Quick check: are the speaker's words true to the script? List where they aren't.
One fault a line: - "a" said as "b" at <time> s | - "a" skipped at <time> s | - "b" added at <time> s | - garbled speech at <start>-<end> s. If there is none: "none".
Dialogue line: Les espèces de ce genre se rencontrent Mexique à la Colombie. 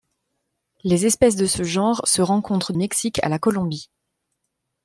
none